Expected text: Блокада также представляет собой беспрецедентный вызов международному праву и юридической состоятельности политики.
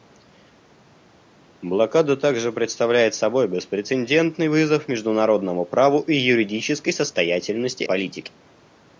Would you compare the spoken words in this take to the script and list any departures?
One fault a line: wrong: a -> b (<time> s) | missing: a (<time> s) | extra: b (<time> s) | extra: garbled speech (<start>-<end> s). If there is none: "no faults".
no faults